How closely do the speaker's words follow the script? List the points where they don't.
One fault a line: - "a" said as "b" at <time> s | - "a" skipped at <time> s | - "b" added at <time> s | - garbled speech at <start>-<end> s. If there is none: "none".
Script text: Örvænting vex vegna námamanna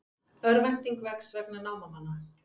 none